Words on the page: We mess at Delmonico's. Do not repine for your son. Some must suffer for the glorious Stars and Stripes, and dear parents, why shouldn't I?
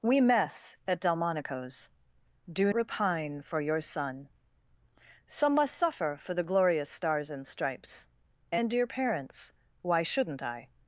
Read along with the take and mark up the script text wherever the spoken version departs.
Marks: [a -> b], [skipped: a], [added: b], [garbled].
We mess at Delmonico's. Do [skipped: not] repine for your son. Some must suffer for the glorious Stars and Stripes, and dear parents, why shouldn't I?